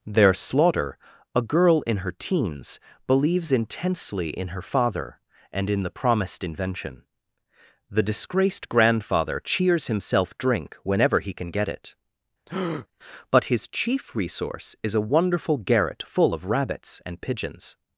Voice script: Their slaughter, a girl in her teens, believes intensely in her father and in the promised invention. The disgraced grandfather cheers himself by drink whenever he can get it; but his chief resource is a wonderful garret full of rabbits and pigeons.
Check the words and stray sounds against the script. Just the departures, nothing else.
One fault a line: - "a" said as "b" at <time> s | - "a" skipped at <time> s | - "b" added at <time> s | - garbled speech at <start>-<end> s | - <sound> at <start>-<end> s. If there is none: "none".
- "by" skipped at 10.4 s
- breath at 12.5-12.9 s